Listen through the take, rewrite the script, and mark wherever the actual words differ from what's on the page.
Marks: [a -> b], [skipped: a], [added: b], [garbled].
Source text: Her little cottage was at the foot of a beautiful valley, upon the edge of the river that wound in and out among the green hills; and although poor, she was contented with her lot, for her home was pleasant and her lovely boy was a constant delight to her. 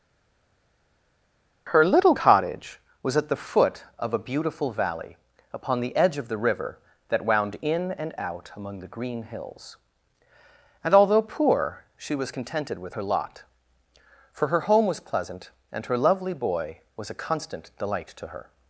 Her little cottage was at the foot of a beautiful valley, upon the edge of the river that wound in and out among the green hills; and although poor, she was contented with her lot, for her home was pleasant and her lovely boy was a constant delight to her.